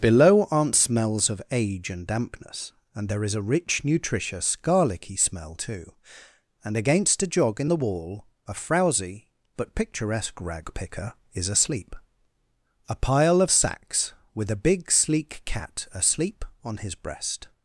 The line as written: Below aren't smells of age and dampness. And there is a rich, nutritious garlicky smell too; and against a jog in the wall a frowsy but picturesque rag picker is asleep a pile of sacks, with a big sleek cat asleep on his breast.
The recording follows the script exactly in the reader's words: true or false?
true